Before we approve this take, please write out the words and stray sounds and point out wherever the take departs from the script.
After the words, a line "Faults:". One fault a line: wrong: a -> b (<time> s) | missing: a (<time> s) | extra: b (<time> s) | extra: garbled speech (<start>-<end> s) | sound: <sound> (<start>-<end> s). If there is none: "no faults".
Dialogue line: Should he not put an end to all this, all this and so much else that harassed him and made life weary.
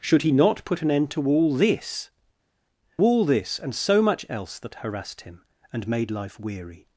Should he not put an end to all this, all this and so much else that harassed him and made life weary.
Faults:
no faults